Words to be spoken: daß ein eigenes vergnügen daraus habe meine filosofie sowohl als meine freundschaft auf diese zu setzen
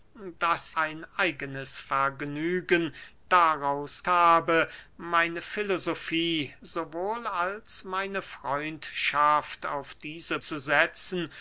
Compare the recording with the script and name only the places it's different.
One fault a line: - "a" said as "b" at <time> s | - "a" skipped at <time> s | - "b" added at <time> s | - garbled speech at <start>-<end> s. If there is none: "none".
none